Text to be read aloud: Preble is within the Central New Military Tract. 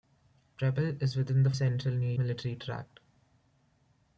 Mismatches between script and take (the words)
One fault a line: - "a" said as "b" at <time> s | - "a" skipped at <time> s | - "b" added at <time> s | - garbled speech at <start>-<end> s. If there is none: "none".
none